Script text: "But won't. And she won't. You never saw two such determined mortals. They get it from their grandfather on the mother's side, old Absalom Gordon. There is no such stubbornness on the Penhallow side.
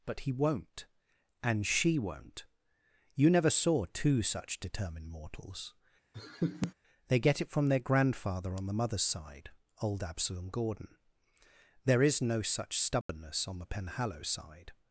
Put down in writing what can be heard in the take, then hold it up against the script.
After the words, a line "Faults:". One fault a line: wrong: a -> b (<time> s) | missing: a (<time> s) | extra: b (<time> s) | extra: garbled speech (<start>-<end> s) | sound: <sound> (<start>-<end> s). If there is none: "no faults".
"But he won't. And she won't. You never saw two such determined mortals. They get it from their grandfather on the mother's side, old Absalom Gordon. There is no such stubbornness on the Penhallow side.
Faults:
extra: he (0.2 s)
sound: laugh (6.1-6.7 s)
sound: dropout (13.0-13.1 s)